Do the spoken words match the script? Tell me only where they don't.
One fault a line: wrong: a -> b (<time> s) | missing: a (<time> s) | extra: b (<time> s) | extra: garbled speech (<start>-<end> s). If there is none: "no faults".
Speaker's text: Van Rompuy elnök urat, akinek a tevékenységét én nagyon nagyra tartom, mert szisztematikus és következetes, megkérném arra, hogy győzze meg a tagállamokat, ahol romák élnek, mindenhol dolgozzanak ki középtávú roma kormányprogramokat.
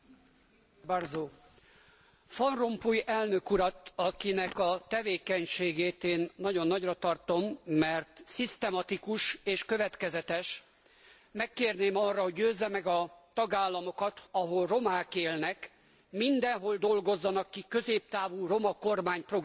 no faults